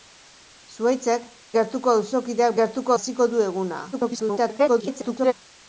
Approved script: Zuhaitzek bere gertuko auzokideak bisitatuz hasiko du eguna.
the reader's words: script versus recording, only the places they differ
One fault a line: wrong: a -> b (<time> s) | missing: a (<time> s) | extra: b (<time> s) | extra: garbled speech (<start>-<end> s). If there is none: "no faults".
missing: bere (1.3 s)
wrong: bisitatuz -> gertuko (2.6 s)
extra: garbled speech (3.9-5.3 s)